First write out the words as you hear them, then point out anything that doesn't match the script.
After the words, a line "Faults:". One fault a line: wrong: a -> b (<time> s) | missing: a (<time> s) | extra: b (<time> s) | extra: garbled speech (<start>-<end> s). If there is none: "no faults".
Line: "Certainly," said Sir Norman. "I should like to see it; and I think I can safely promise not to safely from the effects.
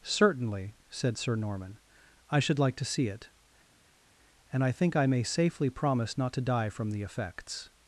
"Certainly," said Sir Norman. "I should like to see it; and I think I may safely promise not to die from the effects.
Faults:
wrong: can -> may (5.1 s)
wrong: safely -> die (6.5 s)